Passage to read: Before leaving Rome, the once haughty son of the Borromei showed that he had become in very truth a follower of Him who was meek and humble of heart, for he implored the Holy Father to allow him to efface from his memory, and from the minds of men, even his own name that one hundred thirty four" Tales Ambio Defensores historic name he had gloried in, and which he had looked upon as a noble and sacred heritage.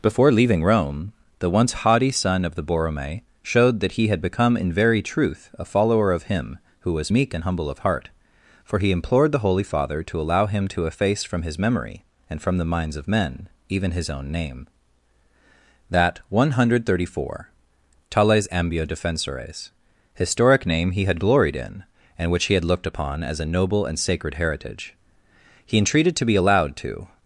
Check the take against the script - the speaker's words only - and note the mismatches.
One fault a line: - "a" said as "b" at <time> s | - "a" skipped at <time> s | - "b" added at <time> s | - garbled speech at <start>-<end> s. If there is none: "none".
- "He entreated to be allowed to" added at 25.6 s